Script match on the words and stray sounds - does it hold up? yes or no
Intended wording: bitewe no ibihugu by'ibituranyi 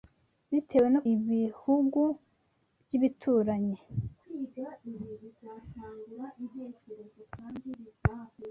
yes